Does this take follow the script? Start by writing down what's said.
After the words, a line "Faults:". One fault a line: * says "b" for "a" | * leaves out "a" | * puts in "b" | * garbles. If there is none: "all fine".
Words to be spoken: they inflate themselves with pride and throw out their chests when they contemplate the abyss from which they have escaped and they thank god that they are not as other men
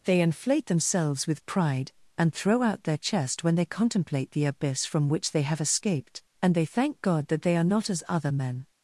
they inflate themselves with pride and throw out their chest when they contemplate the abyss from which they have escaped and they thank god that they are not as other men
Faults:
* says "chest" for "chests"